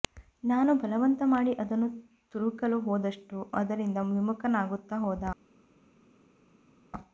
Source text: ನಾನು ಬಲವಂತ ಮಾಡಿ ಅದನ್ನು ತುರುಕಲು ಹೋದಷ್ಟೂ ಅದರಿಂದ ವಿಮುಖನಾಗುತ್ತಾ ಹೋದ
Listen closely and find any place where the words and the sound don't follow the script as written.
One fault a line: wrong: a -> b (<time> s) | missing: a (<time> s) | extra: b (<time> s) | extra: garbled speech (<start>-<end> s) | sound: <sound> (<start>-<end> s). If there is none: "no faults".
no faults